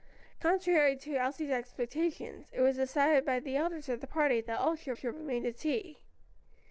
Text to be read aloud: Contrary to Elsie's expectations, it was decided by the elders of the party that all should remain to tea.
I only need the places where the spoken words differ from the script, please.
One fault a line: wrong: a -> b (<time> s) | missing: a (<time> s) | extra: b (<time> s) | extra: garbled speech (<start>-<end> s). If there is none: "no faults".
extra: should (4.9 s)